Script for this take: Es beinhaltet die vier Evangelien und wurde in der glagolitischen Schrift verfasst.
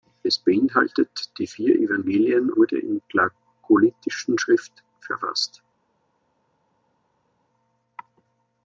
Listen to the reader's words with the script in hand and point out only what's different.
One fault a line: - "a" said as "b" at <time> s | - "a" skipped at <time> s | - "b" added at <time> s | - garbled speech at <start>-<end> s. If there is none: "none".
- "und" skipped at 2.5 s
- "der" skipped at 3.0 s